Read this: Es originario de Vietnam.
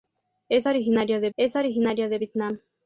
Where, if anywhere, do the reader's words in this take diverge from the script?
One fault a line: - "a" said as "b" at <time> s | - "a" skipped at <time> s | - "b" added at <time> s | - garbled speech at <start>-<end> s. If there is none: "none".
- "es originario de" added at 1.4 s